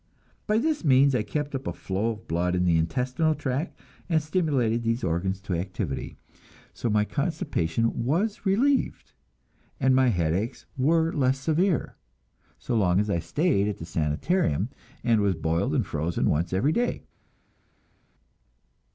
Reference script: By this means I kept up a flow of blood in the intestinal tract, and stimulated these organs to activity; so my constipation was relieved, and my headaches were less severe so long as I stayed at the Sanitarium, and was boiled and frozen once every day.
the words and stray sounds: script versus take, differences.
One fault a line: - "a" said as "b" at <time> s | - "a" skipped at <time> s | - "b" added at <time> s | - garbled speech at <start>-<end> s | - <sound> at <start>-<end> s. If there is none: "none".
none